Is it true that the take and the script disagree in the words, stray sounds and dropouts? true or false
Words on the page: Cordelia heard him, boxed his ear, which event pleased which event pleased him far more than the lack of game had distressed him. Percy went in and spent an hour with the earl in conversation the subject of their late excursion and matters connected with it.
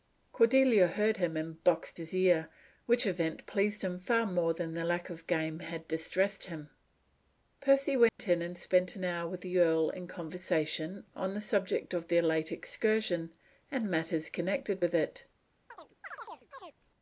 true